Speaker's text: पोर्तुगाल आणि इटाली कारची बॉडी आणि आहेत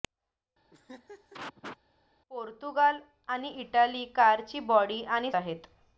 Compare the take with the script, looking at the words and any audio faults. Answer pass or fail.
fail